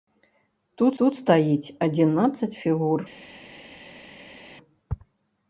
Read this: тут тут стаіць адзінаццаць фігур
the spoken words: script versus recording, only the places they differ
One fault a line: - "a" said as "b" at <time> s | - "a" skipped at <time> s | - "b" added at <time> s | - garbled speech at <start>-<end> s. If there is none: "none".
none